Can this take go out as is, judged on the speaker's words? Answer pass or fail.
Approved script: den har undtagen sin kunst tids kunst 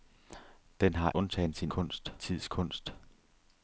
pass